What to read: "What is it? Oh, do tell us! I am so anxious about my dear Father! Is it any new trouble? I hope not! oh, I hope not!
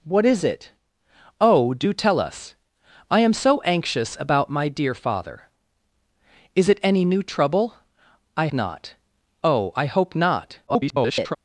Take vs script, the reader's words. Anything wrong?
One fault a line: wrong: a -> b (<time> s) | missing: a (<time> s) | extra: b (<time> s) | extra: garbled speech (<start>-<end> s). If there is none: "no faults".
missing: hope (8.5 s)
extra: garbled speech (10.7-11.4 s)